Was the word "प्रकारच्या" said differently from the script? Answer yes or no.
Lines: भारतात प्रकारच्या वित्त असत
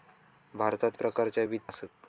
no